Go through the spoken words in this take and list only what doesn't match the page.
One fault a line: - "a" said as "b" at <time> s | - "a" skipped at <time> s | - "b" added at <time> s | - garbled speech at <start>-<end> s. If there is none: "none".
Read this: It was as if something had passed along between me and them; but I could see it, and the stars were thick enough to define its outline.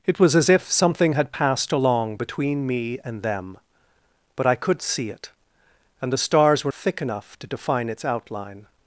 none